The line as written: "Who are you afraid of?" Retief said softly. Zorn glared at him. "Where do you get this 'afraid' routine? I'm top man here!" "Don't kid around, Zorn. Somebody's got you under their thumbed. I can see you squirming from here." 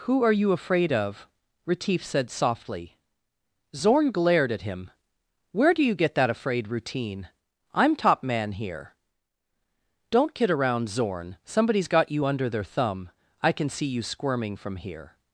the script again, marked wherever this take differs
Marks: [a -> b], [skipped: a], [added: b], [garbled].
"Who are you afraid of?" Retief said softly. Zorn glared at him. "Where do you get [this -> that] 'afraid' routine? I'm top man here!" "Don't kid around, Zorn. Somebody's got you under their [thumbed. -> thumb] I can see you squirming from here."